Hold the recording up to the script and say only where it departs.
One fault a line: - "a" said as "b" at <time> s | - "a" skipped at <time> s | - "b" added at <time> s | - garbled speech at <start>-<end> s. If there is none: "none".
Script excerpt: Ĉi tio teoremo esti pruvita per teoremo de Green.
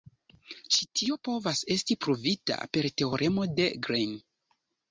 - "teoremo" said as "povas" at 1.3 s